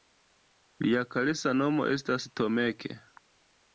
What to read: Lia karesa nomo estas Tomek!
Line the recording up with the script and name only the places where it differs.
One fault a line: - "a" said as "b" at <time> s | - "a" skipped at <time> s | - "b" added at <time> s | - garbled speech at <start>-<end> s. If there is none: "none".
none